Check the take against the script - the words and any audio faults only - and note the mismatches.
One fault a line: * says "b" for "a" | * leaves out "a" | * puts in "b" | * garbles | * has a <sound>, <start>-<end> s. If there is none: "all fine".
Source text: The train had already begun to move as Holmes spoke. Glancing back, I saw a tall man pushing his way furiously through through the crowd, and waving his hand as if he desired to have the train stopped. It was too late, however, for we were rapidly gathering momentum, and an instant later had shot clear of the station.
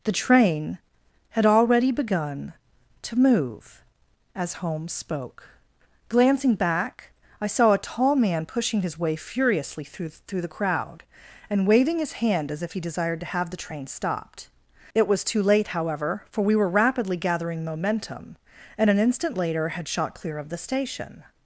all fine